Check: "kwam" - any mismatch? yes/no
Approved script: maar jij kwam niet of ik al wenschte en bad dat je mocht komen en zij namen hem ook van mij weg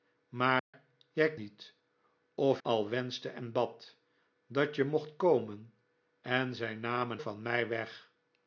yes